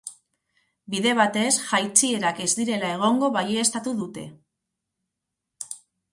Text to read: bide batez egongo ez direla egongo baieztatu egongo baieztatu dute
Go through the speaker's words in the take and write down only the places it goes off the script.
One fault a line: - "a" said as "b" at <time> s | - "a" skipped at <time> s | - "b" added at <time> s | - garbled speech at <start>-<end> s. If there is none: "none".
- "egongo" said as "jaitsierak" at 1.6 s
- "egongo baieztatu" skipped at 4.0 s